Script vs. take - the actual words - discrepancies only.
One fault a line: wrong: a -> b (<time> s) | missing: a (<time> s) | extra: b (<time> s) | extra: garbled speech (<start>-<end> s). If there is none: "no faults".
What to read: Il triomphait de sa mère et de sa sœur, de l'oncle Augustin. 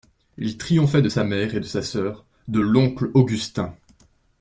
no faults